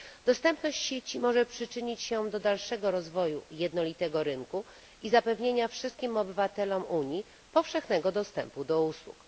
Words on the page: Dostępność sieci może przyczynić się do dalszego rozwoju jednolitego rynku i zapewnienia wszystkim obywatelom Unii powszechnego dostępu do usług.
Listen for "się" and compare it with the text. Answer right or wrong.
right